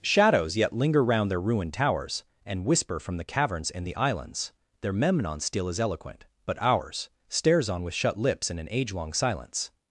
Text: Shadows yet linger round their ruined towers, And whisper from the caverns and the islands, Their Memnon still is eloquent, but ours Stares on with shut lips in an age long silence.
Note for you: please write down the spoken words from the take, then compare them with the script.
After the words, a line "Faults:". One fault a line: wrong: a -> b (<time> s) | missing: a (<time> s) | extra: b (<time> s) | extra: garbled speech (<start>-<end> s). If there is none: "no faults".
Shadows yet linger round their ruined towers, And whisper from the caverns and the islands, Their Memnon still is eloquent, but ours Stares on with shut lips in an age long silence.
Faults:
no faults